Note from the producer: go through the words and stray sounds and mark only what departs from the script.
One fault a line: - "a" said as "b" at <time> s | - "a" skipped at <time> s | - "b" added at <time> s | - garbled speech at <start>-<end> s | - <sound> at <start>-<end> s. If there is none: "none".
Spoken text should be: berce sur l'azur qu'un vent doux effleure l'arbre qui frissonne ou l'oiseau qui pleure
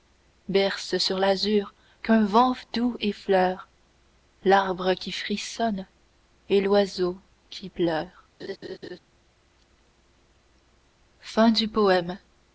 - "ou" said as "et" at 6.5 s
- laugh at 8.4-9.0 s